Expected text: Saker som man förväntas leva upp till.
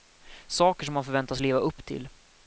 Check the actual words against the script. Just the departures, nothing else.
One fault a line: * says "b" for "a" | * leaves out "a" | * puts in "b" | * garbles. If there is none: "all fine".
all fine